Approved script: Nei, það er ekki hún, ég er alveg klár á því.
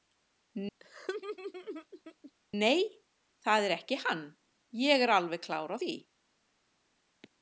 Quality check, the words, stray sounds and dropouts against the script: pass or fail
fail